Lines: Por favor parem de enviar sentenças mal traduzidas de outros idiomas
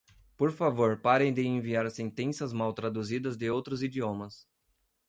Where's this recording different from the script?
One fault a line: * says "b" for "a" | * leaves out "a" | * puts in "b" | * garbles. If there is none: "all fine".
all fine